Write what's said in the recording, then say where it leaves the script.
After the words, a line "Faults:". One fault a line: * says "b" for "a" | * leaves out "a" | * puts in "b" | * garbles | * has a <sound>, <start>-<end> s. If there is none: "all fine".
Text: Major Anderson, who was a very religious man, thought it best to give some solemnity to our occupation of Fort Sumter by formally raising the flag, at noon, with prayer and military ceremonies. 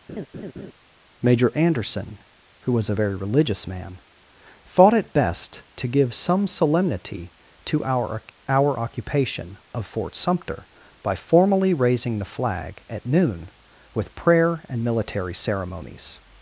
Major Anderson, who was a very religious man, thought it best to give some solemnity to our our occupation of Fort Sumter by formally raising the flag, at noon, with prayer and military ceremonies.
Faults:
* has a laugh, 0.1-0.7 s
* puts in "our"